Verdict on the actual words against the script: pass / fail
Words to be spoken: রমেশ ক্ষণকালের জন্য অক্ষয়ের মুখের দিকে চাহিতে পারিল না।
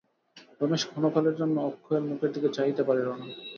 pass